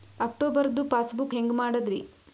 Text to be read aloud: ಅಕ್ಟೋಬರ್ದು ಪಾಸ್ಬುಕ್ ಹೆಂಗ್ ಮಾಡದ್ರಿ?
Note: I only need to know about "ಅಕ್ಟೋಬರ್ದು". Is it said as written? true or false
true